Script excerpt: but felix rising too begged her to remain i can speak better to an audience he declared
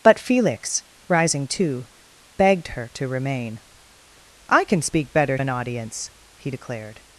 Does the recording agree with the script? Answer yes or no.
no